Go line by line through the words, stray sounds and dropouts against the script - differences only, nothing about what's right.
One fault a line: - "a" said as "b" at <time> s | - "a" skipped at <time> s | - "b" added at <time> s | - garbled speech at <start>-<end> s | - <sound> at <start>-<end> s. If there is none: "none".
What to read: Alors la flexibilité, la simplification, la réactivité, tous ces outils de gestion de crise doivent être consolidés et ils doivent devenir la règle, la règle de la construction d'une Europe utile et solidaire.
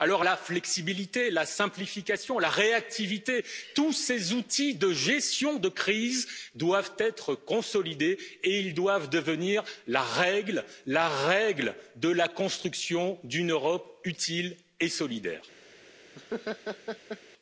- laugh at 16.1-17.2 s